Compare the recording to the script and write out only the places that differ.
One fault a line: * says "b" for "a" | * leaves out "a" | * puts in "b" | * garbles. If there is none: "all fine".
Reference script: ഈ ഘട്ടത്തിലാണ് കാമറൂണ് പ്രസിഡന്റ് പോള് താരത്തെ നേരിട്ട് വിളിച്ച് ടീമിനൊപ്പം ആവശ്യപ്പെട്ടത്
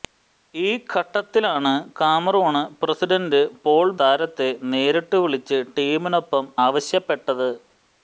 all fine